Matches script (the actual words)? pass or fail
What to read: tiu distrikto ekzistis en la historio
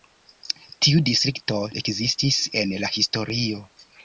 pass